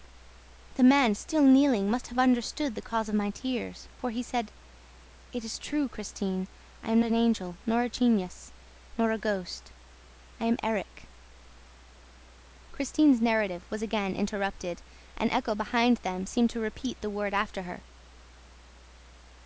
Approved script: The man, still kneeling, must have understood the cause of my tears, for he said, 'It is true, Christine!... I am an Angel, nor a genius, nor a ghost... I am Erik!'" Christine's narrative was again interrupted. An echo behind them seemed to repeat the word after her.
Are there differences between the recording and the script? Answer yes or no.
no